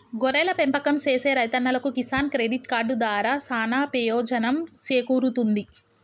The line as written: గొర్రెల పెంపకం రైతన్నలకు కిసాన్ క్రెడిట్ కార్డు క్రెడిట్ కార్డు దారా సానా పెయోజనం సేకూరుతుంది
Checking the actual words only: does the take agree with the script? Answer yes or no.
no